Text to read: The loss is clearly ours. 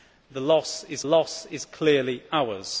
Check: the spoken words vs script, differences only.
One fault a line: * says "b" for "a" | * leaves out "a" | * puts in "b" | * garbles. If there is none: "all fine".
* puts in "loss is"